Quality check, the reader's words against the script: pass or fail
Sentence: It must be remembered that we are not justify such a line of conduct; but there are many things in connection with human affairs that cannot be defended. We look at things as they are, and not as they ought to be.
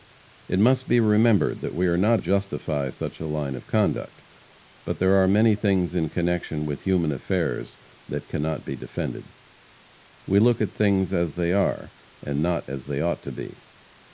pass